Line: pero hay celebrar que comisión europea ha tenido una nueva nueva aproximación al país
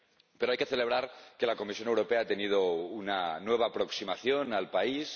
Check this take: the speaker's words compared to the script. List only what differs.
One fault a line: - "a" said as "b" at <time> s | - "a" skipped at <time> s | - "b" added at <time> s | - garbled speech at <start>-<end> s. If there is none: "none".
- "que" added at 0.5 s
- "la" added at 1.4 s
- "nueva" skipped at 3.7 s